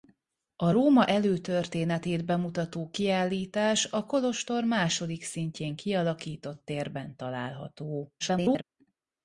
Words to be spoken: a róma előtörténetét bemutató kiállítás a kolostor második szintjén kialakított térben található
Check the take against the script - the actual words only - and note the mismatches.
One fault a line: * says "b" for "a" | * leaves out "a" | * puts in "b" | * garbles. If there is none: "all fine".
* garbles